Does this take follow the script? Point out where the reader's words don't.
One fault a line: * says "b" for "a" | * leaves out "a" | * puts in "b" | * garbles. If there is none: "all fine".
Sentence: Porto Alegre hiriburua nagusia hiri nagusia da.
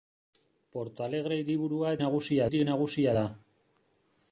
all fine